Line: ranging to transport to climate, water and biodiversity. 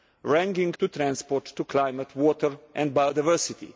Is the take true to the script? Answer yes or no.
yes